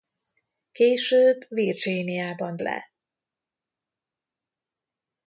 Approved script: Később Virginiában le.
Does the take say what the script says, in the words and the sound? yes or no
yes